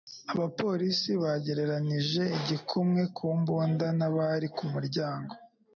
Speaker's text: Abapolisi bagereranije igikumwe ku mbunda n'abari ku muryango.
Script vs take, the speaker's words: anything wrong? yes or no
no